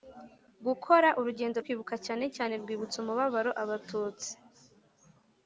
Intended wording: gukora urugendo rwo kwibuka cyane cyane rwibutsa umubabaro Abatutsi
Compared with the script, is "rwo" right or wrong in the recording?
wrong